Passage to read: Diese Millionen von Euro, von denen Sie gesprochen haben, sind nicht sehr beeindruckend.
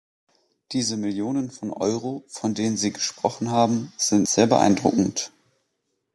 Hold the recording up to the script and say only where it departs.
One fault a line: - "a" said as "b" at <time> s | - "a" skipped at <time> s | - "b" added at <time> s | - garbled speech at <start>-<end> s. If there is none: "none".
- "nicht" skipped at 4.3 s